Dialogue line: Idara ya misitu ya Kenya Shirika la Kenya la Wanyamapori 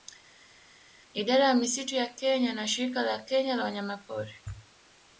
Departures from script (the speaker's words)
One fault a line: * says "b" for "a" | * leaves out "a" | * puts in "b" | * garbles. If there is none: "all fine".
* puts in "na"